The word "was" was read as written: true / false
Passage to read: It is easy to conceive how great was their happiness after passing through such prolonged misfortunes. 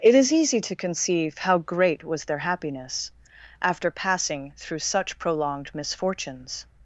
true